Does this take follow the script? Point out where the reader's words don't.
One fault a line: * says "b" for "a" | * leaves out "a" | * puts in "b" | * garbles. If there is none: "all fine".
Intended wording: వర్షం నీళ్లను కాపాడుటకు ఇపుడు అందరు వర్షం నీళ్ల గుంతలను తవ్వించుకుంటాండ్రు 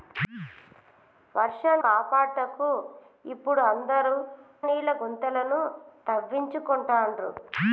* leaves out "నీళ్లను"
* leaves out "వర్షం"